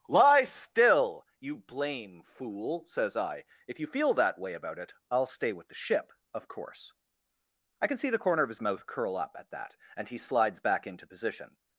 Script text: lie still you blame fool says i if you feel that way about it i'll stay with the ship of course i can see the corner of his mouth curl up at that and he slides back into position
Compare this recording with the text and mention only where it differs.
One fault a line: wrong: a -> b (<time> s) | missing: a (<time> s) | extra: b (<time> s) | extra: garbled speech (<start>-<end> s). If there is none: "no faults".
no faults